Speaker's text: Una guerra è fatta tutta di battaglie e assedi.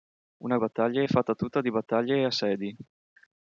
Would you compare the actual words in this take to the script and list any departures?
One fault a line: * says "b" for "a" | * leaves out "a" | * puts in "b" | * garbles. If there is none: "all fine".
* says "battaglie" for "guerra"